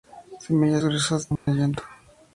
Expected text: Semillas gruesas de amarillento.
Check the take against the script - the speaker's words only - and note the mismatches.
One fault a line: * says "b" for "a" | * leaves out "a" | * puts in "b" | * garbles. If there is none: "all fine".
all fine